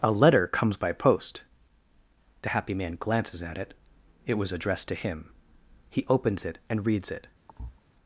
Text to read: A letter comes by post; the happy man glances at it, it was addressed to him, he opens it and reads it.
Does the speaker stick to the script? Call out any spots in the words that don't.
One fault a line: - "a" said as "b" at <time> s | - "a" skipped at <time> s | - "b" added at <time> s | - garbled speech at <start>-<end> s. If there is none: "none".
none